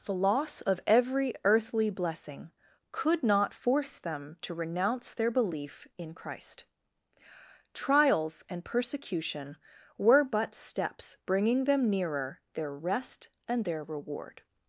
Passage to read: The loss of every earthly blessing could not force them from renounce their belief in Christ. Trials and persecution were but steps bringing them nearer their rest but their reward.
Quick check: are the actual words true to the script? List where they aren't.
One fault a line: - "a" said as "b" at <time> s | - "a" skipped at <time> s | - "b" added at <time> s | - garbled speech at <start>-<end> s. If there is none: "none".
- "from" said as "to" at 4.4 s
- "but" said as "and" at 13.5 s